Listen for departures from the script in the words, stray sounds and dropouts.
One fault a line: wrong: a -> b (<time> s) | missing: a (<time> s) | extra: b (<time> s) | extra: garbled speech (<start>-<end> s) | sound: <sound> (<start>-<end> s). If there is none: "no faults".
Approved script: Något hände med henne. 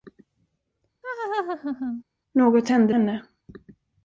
sound: laugh (1.0-2.0 s)
missing: med (2.9 s)